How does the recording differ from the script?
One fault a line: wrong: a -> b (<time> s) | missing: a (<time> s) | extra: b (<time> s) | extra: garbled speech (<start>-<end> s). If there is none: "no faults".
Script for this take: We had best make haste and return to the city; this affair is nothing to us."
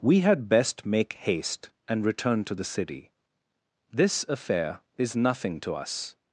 no faults